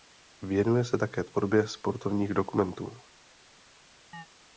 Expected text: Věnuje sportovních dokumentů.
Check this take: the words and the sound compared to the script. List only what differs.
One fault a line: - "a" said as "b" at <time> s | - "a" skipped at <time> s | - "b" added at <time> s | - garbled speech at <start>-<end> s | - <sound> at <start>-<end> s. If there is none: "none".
- "se také tvorbě" added at 0.8 s
- chirp at 4.1-4.3 s